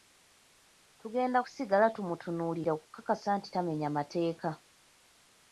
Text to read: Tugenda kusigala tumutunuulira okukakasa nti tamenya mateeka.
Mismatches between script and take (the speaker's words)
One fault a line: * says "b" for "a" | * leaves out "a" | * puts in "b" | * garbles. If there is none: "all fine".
all fine